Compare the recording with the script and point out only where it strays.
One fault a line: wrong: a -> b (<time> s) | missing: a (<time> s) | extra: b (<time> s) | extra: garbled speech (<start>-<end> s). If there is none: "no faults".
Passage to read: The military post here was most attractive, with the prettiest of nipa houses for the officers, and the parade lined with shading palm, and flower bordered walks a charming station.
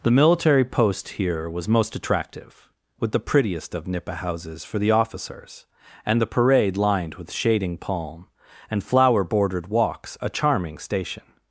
no faults